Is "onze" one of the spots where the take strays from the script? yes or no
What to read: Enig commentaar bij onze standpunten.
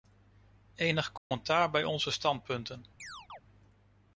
no